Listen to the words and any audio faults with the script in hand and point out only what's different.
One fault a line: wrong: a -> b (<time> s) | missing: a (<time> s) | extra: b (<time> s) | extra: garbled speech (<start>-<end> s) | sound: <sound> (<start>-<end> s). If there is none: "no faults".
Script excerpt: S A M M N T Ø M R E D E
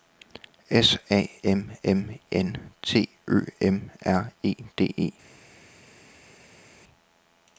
no faults